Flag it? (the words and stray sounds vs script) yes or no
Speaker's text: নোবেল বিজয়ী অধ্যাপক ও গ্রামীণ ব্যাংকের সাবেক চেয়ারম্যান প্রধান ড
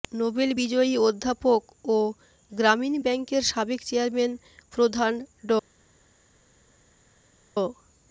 no